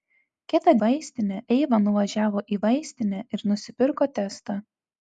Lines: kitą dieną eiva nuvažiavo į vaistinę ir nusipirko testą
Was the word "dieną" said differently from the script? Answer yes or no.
yes